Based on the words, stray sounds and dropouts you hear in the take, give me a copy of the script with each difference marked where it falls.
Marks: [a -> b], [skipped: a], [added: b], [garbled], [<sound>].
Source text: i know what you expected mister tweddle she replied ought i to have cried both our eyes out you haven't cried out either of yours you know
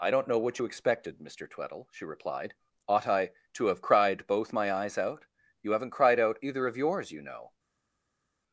i [added: don't] know what you expected mister tweddle she replied ought i to have cried both [our -> my] eyes out you haven't cried out either of yours you know